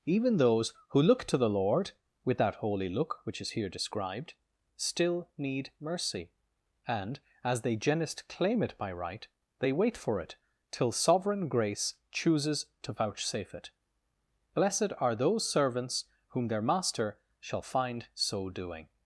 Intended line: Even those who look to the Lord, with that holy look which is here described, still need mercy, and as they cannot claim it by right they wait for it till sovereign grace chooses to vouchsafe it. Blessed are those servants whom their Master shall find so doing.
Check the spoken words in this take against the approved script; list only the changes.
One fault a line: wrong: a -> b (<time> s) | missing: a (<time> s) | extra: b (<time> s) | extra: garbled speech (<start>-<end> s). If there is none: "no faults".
wrong: cannot -> genist (7.8 s)